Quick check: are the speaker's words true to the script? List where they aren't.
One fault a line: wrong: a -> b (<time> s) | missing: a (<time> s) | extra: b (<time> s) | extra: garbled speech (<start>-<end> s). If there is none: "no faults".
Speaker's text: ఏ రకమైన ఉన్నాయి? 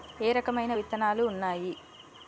extra: విత్తనాలు (0.7 s)